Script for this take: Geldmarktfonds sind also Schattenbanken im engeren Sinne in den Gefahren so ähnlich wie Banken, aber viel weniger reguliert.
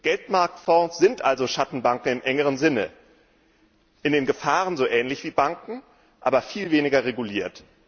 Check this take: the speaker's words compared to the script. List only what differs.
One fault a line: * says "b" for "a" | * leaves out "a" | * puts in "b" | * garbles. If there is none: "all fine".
all fine